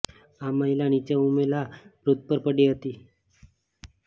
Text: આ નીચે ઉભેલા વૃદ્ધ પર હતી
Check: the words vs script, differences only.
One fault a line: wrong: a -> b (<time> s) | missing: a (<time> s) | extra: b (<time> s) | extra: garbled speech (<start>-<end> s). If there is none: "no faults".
extra: મહિલા (0.5 s)
extra: પડી (2.4 s)